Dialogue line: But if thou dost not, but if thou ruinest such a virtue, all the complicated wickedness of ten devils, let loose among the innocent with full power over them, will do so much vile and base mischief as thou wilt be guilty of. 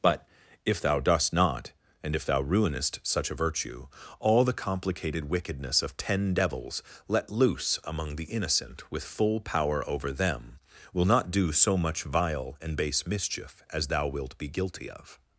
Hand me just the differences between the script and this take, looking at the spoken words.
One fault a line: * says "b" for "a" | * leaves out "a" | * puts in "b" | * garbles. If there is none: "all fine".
* says "and" for "but"
* puts in "not"